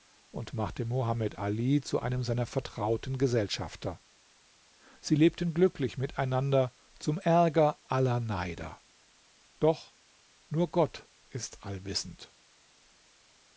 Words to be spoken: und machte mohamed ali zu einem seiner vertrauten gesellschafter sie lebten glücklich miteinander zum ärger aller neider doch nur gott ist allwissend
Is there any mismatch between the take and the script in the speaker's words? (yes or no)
no